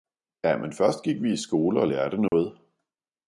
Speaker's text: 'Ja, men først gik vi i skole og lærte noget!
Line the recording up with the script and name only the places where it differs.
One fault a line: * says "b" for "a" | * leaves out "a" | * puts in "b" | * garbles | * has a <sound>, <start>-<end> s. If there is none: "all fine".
* has a dropout, 2.3-2.3 s